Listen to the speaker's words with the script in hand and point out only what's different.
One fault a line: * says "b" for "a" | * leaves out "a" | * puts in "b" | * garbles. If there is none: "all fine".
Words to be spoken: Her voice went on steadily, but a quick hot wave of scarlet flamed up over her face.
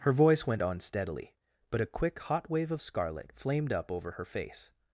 all fine